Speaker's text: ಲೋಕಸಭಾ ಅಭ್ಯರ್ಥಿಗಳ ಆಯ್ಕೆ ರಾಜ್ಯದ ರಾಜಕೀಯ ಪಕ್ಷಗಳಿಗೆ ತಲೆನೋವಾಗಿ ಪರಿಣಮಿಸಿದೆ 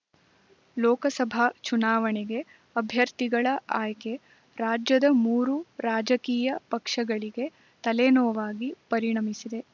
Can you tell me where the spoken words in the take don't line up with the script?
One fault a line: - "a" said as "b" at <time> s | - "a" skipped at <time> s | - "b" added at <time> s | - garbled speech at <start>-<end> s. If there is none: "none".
- "ಚುನಾವಣೆಗೆ" added at 1.6 s
- "ಮೂರು" added at 5.2 s